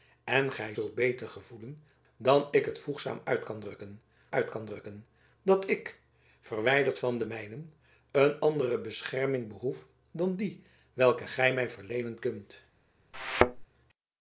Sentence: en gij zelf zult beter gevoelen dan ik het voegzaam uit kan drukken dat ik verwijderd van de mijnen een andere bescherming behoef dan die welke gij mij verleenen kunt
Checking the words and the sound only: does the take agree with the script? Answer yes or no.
no